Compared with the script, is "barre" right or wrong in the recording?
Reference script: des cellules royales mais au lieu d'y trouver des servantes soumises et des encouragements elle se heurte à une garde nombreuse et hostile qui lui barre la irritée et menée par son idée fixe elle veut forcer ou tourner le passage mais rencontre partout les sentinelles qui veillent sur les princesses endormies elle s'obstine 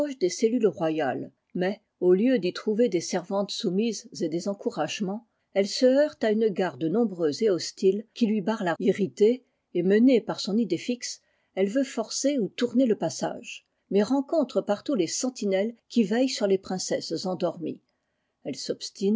right